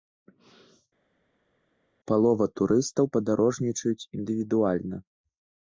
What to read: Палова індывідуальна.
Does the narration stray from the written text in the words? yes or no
yes